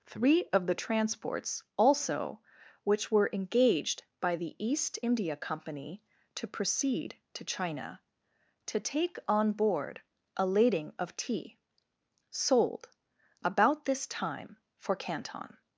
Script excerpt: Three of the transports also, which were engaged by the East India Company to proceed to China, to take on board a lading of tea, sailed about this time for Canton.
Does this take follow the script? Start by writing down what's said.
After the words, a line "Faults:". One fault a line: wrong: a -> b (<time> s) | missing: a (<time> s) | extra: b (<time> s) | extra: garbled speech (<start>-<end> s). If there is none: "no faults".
Three of the transports also, which were engaged by the East India Company to proceed to China, to take on board a lading of tea, sold about this time for Canton.
Faults:
wrong: sailed -> sold (12.3 s)